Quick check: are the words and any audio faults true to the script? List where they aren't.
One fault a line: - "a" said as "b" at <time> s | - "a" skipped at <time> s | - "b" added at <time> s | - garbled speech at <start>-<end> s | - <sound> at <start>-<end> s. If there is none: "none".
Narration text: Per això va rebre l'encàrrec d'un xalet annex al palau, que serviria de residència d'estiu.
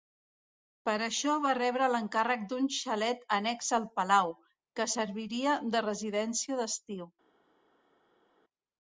none